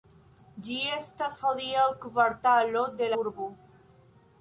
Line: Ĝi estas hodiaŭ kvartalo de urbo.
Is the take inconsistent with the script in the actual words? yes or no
no